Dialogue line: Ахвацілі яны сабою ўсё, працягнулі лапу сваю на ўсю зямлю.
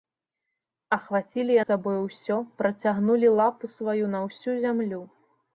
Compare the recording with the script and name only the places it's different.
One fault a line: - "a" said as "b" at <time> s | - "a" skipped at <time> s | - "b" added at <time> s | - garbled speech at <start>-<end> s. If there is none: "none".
- "яны" skipped at 1.6 s